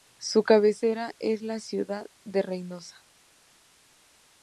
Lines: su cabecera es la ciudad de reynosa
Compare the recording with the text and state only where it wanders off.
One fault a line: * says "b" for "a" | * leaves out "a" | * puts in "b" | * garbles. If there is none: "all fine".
all fine